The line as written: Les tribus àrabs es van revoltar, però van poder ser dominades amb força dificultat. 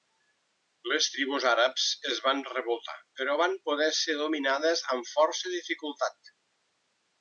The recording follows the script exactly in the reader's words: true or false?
true